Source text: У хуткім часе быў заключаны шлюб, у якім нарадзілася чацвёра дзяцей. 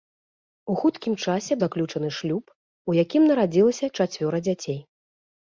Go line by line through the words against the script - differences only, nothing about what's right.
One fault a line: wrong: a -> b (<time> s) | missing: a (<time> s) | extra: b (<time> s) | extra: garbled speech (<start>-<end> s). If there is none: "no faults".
missing: быў (1.6 s)